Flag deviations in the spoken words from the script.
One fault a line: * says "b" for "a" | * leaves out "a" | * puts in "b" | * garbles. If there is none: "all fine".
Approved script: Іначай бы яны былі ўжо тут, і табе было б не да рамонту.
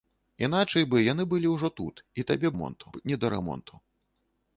* says "рамонту" for "было"